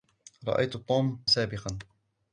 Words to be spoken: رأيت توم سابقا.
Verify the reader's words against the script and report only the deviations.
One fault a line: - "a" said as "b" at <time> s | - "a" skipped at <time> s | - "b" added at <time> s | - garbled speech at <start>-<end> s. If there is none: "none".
none